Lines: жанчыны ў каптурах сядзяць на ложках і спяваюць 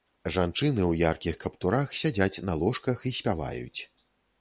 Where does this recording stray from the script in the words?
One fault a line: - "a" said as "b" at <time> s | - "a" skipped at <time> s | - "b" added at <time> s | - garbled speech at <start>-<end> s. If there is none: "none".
- "яркіх" added at 1.1 s